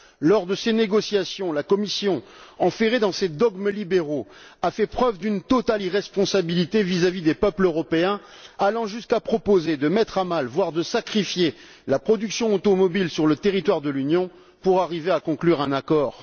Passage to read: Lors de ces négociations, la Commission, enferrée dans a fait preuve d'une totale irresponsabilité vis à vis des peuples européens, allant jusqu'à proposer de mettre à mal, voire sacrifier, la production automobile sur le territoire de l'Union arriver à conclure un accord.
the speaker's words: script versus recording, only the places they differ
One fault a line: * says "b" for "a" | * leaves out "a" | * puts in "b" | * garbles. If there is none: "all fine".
* puts in "ses dogmes libéraux"
* puts in "de"
* puts in "pour"